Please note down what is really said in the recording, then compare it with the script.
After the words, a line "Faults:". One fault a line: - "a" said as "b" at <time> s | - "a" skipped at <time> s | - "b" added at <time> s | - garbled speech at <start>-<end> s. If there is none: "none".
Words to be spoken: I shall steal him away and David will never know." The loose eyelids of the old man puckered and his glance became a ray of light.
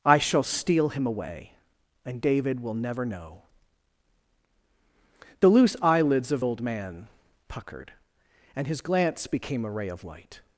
I shall steal him away and David will never know." The loose eyelids of old man puckered and his glance became a ray of light.
Faults:
- "the" skipped at 6.5 s